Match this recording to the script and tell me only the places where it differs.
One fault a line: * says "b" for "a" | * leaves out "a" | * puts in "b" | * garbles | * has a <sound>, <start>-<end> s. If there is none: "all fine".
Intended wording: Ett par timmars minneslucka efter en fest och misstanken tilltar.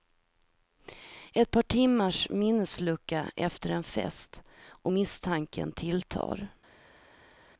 all fine